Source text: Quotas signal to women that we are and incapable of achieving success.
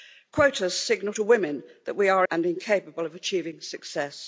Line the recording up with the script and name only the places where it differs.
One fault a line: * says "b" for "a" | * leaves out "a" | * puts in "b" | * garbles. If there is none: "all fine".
all fine